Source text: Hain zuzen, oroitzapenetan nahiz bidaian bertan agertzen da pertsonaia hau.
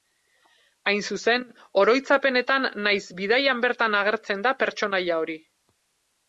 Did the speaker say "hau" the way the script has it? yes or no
no